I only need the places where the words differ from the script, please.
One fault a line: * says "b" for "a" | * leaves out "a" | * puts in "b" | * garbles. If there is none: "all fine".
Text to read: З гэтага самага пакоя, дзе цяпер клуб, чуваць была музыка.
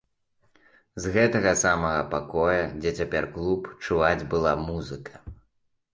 all fine